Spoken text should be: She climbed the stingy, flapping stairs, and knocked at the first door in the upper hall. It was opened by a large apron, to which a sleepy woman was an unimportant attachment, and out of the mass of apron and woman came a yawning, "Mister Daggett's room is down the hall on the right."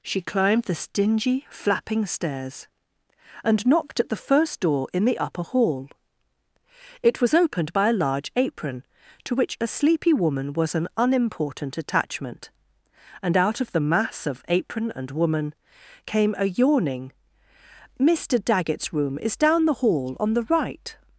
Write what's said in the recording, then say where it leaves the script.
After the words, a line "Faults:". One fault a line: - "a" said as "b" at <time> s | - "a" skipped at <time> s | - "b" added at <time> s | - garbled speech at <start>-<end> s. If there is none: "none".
She climbed the stingy, flapping stairs, and knocked at the first door in the upper hall. It was opened by a large apron, to which a sleepy woman was an unimportant attachment, and out of the mass of apron and woman came a yawning, "Mister Daggett's room is down the hall on the right."
Faults:
none